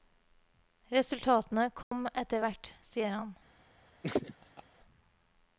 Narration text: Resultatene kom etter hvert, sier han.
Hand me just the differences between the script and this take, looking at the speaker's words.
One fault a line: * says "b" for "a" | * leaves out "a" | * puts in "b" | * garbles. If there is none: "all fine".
all fine